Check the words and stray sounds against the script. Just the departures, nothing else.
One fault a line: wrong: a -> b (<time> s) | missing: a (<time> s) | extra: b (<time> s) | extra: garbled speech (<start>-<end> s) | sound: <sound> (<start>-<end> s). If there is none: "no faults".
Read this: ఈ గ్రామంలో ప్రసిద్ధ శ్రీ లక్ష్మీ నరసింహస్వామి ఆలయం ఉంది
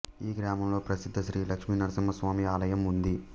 no faults